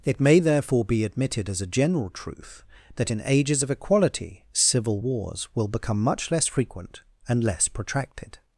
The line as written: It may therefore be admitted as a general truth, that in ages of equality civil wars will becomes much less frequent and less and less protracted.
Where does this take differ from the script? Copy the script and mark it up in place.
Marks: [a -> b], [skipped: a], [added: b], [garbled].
It may therefore be admitted as a general truth, that in ages of equality civil wars will [becomes -> become] much less frequent and less [skipped: and less] protracted.